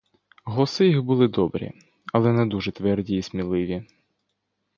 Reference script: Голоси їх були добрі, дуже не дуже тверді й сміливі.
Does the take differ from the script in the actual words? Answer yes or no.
yes